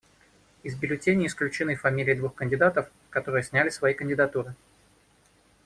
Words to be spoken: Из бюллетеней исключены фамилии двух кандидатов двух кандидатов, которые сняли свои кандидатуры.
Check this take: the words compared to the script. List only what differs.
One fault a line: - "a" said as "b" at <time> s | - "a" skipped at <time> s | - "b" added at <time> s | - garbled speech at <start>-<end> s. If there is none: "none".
- "двух кандидатов" skipped at 2.9 s